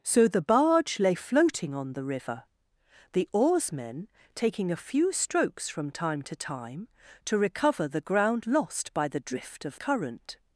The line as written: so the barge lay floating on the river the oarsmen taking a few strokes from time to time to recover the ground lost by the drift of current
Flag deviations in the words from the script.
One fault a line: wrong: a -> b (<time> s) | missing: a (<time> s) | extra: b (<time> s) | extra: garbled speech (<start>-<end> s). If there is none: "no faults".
no faults